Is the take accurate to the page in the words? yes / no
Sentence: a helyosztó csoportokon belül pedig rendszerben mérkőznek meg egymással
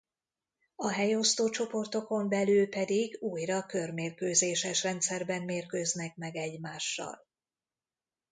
no